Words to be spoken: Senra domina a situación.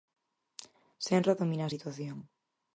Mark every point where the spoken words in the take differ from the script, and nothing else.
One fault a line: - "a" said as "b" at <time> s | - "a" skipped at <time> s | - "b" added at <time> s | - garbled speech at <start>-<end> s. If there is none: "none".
none